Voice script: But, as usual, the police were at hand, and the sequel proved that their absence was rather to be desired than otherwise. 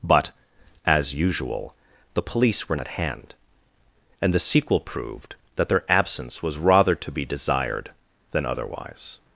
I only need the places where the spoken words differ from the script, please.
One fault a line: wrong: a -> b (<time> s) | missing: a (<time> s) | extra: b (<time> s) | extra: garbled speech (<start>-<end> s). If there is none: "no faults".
no faults